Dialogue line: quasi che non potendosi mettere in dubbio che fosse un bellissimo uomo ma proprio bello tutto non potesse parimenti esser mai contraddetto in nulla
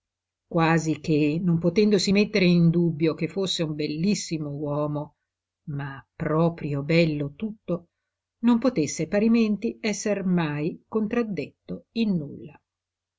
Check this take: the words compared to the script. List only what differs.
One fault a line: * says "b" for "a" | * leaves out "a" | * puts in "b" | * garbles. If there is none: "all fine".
all fine